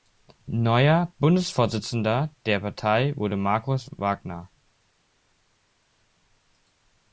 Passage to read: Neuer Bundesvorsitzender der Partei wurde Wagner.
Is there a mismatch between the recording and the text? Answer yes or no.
yes